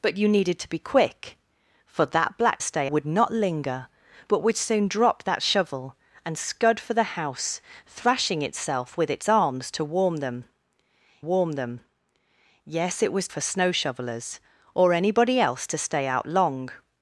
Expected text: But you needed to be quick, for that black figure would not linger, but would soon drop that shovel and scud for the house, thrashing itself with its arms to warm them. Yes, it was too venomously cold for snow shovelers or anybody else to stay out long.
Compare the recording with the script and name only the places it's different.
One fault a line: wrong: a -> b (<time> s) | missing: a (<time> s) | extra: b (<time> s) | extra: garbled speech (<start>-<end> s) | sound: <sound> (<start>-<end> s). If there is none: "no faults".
wrong: figure -> stay (2.6 s)
extra: warm them (11.2 s)
missing: too venomously cold (13.3 s)